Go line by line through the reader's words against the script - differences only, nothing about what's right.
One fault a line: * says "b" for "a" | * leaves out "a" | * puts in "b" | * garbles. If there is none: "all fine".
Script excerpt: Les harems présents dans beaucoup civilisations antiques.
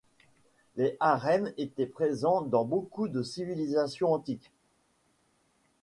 * puts in "étaient"
* puts in "de"